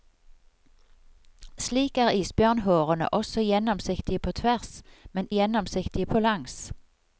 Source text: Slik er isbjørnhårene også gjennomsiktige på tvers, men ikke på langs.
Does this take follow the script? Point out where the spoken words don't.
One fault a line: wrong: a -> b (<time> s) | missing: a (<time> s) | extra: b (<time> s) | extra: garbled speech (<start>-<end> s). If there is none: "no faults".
wrong: ikke -> gjennomsiktige (5.3 s)